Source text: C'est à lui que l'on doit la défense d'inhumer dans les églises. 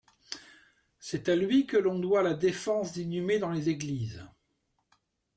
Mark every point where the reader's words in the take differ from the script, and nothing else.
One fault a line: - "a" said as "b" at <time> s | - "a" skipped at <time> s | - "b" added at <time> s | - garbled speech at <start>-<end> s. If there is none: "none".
none